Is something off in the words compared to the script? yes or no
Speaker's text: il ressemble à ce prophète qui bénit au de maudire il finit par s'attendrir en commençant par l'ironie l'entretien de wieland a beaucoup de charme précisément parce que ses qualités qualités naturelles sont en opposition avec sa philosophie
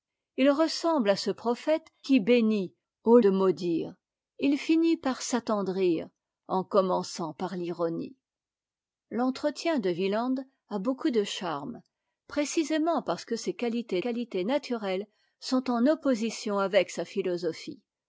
no